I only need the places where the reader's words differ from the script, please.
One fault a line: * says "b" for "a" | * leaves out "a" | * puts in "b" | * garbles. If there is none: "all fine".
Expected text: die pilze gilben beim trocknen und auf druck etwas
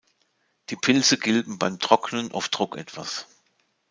* leaves out "und"